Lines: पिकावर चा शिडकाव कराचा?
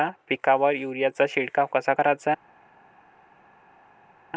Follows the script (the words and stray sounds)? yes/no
no